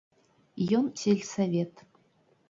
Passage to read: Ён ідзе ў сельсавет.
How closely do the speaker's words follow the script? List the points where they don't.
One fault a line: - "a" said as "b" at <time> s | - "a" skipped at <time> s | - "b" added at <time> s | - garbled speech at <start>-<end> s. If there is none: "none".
- "ідзе ў" skipped at 0.8 s